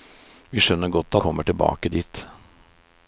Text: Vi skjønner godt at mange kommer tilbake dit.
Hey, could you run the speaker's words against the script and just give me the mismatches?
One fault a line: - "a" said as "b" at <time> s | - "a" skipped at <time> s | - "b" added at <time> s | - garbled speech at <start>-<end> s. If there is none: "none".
- "at mange" skipped at 1.1 s